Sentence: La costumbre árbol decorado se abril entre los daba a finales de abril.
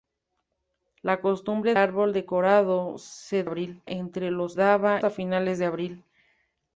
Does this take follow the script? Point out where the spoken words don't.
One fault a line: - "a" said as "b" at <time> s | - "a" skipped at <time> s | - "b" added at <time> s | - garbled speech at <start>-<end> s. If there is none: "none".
none